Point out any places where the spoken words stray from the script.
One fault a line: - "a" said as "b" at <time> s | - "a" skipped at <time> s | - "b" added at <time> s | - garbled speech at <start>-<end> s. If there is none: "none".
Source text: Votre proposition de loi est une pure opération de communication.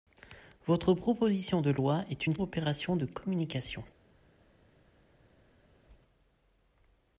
- "pure" skipped at 2.4 s